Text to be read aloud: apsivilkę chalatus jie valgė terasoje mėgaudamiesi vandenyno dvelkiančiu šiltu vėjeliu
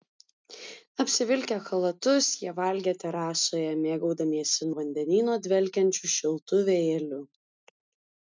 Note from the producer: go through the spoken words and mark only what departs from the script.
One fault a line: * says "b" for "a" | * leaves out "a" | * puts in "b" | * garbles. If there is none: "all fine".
all fine